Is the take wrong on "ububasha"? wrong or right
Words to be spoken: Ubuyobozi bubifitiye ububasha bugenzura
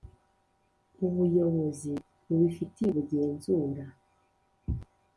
wrong